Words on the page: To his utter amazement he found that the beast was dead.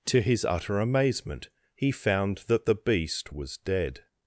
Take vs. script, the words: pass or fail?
pass